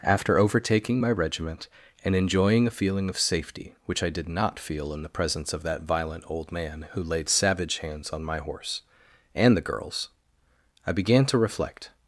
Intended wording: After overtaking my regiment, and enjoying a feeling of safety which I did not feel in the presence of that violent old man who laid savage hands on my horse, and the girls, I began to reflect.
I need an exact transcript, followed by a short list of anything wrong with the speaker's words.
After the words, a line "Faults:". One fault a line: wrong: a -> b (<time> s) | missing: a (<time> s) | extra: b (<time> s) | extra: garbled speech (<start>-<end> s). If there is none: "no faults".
After overtaking my regiment, and enjoying a feeling of safety which I did not feel in the presence of that violent old man who laid savage hands on my horse, and the girls, I began to reflect.
Faults:
no faults